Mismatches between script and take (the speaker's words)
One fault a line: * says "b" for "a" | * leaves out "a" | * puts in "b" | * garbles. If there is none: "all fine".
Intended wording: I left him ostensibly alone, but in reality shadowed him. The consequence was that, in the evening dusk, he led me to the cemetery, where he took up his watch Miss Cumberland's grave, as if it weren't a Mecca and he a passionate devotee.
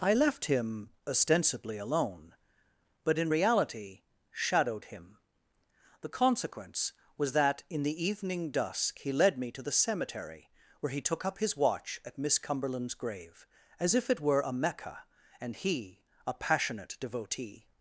* puts in "at"
* says "were" for "weren't"